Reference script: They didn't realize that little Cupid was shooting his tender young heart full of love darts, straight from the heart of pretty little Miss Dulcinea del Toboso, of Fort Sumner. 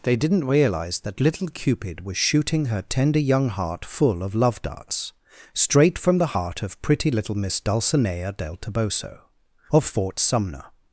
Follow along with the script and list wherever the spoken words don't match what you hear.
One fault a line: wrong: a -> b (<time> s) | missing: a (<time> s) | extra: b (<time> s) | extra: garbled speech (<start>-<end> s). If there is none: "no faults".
wrong: his -> her (2.6 s)